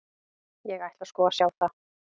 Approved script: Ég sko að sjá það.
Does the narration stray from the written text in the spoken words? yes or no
yes